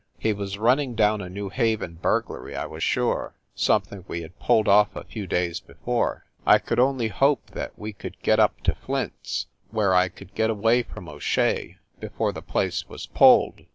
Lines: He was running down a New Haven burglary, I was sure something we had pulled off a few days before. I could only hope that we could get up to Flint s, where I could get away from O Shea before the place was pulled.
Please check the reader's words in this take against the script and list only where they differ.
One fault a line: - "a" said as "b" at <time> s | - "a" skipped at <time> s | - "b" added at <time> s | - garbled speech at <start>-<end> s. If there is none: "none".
none